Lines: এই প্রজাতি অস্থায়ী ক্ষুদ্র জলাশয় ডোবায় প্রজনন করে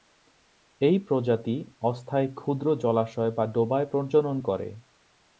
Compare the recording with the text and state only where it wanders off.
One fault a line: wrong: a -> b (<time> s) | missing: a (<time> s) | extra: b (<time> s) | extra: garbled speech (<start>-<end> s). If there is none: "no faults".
extra: বা (3.3 s)